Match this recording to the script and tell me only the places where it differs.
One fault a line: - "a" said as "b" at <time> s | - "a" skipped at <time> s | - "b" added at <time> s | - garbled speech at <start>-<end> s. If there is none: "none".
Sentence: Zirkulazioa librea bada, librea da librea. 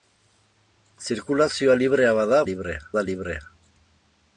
none